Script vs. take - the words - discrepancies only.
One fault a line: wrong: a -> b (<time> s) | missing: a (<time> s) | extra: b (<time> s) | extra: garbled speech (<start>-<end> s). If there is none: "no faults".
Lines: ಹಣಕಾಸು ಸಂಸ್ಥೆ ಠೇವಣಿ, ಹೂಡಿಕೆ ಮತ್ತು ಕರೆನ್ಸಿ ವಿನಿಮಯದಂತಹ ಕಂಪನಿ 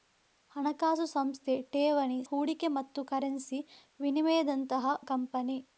no faults